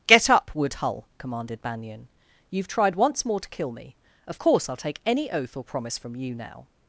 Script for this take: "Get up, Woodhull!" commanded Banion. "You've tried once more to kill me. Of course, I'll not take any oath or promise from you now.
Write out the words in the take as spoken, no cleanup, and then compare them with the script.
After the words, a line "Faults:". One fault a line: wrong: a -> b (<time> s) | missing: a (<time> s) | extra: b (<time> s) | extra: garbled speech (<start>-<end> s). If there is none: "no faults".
"Get up, Woodhull!" commanded Banion. "You've tried once more to kill me. Of course, I'll take any oath or promise from you now.
Faults:
missing: not (4.8 s)